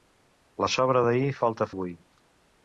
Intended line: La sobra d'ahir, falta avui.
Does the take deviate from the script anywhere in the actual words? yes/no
no